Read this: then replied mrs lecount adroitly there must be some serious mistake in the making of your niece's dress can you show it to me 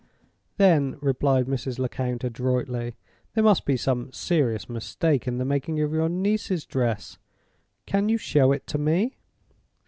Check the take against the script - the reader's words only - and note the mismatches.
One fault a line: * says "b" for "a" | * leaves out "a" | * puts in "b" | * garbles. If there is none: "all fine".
all fine